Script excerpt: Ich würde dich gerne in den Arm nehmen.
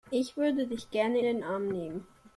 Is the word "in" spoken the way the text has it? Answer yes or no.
no